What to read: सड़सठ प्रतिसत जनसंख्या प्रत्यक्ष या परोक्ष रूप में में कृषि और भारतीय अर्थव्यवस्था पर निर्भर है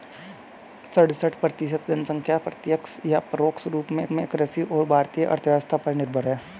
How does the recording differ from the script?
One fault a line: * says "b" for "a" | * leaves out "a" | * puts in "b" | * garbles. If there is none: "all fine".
all fine